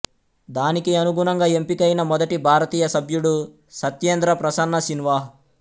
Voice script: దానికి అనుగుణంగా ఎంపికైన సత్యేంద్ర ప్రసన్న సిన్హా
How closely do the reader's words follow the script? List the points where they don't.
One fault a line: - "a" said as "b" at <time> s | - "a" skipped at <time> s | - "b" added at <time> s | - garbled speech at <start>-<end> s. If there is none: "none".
- "మొదటి భారతీయ సభ్యుడు" added at 2.0 s